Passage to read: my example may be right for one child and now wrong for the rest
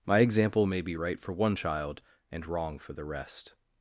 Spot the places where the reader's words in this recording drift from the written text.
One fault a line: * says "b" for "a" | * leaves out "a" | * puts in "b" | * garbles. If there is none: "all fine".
* leaves out "now"